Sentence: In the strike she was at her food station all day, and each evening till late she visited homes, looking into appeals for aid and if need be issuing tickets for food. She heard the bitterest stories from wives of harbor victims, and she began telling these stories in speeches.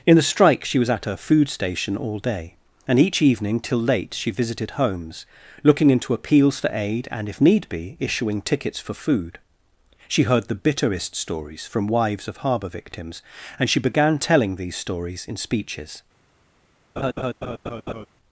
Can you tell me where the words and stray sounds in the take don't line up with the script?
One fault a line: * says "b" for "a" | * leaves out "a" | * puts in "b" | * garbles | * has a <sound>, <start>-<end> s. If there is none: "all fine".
* has a laugh, 17.0-18.1 s